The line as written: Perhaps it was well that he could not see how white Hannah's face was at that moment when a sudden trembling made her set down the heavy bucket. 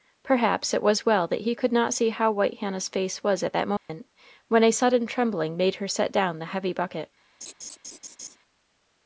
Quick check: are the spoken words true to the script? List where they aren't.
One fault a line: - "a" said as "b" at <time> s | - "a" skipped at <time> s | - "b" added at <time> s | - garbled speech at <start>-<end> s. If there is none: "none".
none